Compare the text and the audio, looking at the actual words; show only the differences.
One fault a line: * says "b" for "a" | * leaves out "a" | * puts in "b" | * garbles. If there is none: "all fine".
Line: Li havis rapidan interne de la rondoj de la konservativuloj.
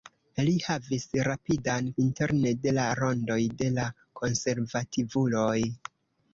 all fine